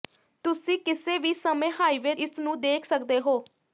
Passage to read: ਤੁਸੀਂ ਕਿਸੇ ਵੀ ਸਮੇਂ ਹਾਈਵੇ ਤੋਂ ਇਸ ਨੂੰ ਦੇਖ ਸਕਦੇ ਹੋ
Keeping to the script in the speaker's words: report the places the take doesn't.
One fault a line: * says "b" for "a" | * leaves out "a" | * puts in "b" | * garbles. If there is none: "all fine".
* leaves out "ਤੋਂ"